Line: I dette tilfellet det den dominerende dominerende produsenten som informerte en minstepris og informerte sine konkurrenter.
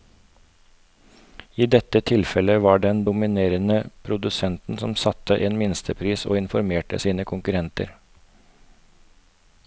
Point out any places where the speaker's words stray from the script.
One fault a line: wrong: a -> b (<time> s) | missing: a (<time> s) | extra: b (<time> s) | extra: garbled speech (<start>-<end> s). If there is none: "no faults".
extra: var (2.6 s)
missing: dominerende (3.8 s)
wrong: informerte -> satte (4.9 s)